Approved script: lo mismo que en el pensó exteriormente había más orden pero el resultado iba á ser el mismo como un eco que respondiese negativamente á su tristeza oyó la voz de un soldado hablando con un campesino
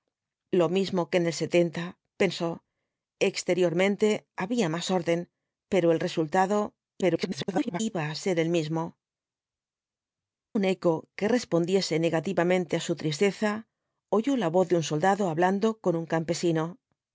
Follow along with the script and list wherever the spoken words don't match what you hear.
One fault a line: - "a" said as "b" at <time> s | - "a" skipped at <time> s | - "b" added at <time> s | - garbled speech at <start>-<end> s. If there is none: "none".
- garbled speech at 7.0-7.8 s
- "como" skipped at 8.8 s